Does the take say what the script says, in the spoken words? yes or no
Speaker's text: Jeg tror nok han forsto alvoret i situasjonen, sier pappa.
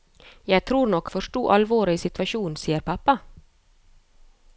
no